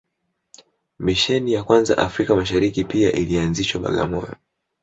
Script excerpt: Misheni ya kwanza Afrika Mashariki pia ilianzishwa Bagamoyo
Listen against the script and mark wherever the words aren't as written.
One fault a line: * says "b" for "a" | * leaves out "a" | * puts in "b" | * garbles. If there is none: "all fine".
all fine